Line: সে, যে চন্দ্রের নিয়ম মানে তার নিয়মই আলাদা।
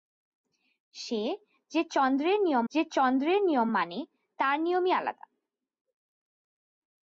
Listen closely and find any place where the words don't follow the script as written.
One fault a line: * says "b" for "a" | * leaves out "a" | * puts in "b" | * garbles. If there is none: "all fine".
* puts in "যে চন্দ্রের নিয়ম"